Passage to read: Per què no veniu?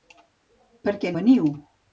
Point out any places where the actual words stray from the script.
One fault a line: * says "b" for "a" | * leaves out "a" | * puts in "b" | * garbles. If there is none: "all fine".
* leaves out "no"